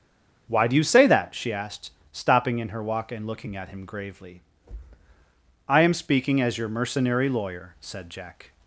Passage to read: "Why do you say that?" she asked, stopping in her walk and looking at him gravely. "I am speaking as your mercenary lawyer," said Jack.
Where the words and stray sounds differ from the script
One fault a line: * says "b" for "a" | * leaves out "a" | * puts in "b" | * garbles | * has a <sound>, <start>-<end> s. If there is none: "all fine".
all fine